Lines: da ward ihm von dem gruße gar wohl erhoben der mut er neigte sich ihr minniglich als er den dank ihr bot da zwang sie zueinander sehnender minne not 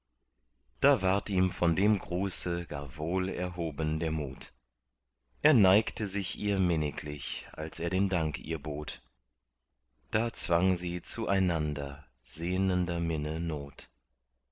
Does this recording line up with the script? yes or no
yes